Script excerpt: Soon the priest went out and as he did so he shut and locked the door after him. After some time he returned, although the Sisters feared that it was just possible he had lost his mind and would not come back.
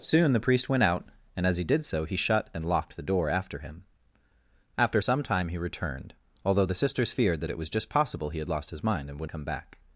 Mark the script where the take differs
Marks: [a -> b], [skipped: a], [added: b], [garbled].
Soon the priest went out and as he did so he shut and locked the door after him. After some time he returned, although the Sisters feared that it was just possible he had lost his mind and would [skipped: not] come back.